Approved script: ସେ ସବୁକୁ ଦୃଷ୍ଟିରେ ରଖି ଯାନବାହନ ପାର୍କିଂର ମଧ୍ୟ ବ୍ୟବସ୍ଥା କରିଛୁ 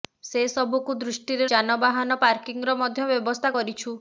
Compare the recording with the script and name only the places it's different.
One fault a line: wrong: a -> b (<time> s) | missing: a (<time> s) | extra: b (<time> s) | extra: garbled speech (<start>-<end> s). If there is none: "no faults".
missing: ରଖି (1.5 s)